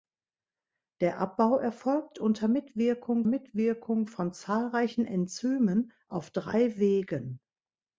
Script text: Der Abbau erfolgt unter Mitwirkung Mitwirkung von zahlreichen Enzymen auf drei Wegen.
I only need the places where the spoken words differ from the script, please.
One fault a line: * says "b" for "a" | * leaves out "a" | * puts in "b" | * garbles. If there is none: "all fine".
all fine